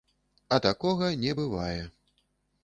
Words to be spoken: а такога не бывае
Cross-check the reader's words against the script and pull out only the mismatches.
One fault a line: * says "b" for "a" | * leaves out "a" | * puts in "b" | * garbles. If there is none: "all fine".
all fine